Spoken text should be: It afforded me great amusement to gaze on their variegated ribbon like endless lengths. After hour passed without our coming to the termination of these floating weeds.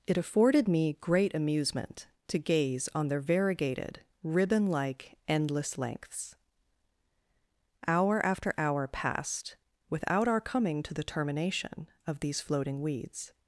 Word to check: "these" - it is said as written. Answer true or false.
true